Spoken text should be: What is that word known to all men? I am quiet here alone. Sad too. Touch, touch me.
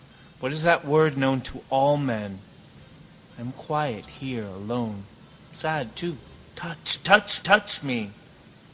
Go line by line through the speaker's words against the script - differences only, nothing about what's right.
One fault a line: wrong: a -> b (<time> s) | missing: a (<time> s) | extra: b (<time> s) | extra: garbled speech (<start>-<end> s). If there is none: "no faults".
extra: touch (7.4 s)